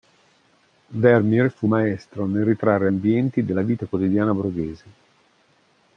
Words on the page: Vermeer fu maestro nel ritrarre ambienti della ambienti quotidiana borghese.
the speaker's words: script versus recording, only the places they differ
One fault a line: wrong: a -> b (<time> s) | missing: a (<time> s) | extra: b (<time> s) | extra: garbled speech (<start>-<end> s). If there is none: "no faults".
wrong: ambienti -> vita (3.6 s)